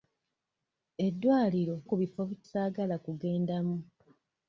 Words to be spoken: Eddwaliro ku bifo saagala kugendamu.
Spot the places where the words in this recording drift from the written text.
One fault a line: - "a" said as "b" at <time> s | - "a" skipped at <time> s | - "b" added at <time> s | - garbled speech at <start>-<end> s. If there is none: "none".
none